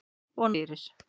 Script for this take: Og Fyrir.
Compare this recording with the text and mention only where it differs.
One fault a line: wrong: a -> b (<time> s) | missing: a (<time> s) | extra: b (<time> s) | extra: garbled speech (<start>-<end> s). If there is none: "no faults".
no faults